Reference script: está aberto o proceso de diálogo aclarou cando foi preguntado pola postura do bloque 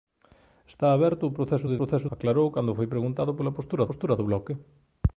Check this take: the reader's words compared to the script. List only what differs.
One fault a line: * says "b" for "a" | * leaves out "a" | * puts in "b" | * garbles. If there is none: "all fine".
* says "proceso" for "diálogo"
* puts in "postura"